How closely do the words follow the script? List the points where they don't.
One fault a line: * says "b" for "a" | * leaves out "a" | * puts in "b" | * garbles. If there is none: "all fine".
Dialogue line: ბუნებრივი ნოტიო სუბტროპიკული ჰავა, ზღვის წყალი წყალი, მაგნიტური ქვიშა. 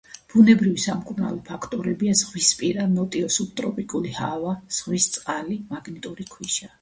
* puts in "სამკურნალო ფაქტორებია ზღვისპირა"
* leaves out "წყალი"